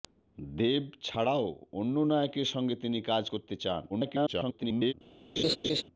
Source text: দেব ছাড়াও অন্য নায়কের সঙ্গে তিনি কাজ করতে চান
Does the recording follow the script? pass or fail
fail